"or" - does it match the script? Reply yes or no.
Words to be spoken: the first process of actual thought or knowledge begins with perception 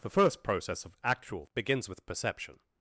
no